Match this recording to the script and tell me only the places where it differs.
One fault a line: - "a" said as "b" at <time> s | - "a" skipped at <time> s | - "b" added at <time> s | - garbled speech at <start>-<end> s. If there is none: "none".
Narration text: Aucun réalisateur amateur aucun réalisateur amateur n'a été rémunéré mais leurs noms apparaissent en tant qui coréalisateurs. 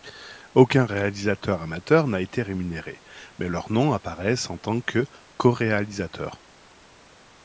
- "aucun réalisateur amateur" skipped at 2.1 s
- "qui" said as "que" at 4.8 s